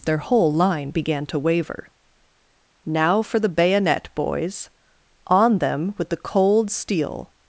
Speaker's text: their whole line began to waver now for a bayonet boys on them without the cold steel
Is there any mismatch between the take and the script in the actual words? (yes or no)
yes